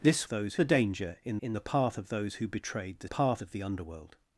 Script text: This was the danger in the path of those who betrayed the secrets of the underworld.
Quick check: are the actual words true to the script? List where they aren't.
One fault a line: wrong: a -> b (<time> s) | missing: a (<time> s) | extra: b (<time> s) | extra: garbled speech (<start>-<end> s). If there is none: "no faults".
wrong: was -> those (0.3 s)
extra: in (1.4 s)
wrong: secrets -> path (3.0 s)